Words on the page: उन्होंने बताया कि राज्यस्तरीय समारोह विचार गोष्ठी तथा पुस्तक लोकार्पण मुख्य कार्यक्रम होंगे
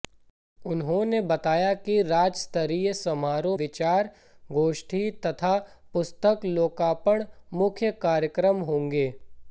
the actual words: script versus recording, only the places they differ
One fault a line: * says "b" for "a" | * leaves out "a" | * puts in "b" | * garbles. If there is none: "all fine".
all fine